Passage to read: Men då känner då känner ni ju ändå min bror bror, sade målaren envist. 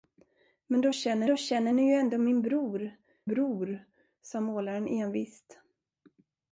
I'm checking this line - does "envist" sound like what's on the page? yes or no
yes